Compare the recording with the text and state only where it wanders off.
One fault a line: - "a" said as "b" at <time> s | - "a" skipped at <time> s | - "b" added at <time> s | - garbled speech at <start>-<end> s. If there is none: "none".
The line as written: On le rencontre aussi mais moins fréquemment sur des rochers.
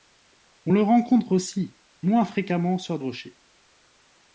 - "mais" skipped at 1.7 s
- "des" skipped at 3.0 s